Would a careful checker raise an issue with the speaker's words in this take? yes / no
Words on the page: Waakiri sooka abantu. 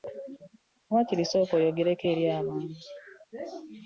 yes